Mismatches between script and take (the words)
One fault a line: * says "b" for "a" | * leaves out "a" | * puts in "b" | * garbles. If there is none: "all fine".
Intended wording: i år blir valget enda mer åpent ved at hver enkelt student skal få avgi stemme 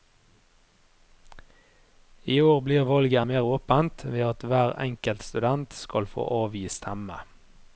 * leaves out "enda"